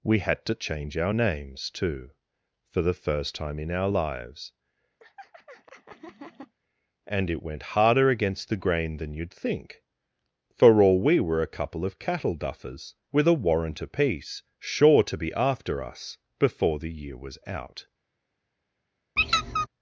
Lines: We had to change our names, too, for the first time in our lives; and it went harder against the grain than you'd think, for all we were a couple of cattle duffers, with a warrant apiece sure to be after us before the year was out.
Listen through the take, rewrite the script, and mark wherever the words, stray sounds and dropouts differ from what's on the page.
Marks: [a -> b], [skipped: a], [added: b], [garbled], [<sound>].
We had to change our names, too, for the first time in our lives; [laugh] and it went harder against the grain than you'd think, for all we were a couple of cattle duffers, with a warrant apiece sure to be after us before the year was out. [squeak]